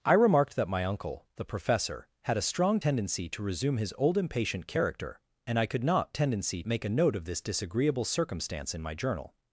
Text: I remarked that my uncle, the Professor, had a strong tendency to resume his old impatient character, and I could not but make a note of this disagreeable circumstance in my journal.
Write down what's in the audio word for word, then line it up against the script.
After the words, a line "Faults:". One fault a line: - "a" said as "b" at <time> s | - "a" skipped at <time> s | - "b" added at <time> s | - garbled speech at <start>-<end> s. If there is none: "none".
I remarked that my uncle, the Professor, had a strong tendency to resume his old impatient character, and I could not tendency make a note of this disagreeable circumstance in my journal.
Faults:
- "but" said as "tendency" at 6.1 s